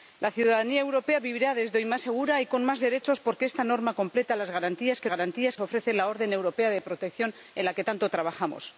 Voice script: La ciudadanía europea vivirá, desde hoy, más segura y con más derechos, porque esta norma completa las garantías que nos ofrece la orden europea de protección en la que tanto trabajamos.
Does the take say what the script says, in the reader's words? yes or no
no